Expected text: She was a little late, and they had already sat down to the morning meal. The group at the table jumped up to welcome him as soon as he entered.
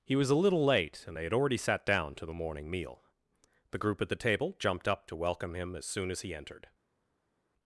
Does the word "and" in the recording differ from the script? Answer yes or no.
no